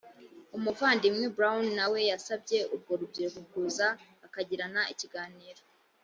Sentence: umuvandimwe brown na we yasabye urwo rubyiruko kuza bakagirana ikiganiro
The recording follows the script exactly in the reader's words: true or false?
true